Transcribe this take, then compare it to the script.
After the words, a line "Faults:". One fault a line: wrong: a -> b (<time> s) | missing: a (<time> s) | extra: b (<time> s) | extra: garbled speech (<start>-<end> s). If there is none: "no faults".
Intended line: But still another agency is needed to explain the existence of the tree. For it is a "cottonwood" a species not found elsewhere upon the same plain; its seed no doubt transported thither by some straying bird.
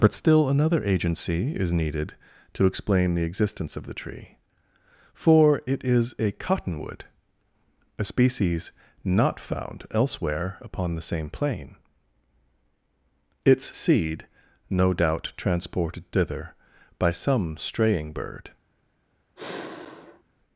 But still another agency is needed to explain the existence of the tree. For it is a "cottonwood" a species not found elsewhere upon the same plain; its seed no doubt transported thither by some straying bird.
Faults:
no faults